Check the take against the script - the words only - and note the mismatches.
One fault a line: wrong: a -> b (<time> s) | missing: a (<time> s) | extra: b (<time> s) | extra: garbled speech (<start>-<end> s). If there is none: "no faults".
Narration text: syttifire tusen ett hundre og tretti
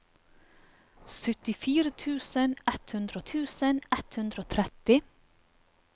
extra: tusen ett hundre (3.3 s)